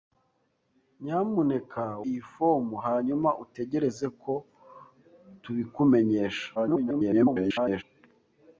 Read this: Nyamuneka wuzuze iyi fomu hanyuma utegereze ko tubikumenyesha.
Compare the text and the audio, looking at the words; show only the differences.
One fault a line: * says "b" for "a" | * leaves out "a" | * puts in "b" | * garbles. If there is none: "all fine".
* leaves out "wuzuze"
* garbles